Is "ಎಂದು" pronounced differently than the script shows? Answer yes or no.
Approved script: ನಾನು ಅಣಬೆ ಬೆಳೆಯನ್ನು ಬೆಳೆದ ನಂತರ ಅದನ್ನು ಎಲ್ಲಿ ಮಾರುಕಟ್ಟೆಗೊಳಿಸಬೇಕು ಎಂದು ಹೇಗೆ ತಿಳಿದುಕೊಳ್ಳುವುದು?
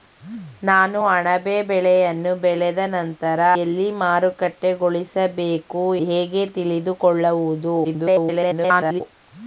yes